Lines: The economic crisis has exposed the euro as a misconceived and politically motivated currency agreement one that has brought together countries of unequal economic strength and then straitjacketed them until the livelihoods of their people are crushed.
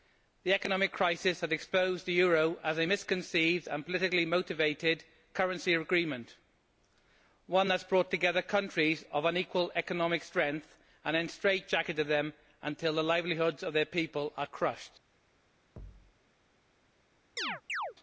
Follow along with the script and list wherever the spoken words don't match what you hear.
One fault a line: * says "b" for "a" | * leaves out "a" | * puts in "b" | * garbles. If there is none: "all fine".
all fine